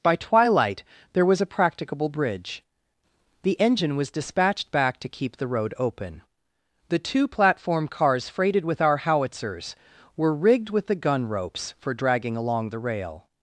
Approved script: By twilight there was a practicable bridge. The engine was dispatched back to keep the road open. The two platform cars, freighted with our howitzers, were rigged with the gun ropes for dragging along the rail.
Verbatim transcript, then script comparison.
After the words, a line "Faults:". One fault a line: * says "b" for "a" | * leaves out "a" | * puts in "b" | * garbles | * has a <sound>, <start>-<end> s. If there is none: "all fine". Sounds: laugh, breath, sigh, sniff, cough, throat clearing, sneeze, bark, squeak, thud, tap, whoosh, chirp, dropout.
By twilight there was a practicable bridge. The engine was dispatched back to keep the road open. The two platform cars, freighted with our howitzers, were rigged with the gun ropes for dragging along the rail.
Faults:
all fine